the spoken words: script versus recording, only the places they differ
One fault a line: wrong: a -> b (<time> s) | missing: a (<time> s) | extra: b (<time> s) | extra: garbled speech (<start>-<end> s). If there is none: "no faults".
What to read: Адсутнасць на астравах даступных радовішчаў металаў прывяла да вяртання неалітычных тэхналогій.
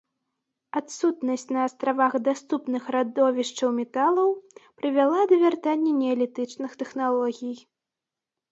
no faults